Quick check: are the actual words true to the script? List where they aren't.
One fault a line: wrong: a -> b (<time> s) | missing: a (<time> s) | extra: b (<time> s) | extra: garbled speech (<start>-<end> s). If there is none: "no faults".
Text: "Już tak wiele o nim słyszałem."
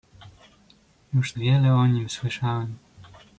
missing: tak (1.3 s)